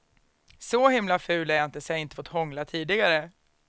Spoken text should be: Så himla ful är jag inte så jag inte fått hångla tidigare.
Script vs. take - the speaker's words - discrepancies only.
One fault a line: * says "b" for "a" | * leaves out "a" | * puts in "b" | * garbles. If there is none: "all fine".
all fine